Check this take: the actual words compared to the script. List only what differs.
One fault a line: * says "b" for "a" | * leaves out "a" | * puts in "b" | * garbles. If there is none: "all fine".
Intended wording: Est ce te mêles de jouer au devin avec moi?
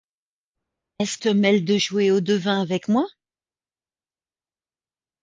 all fine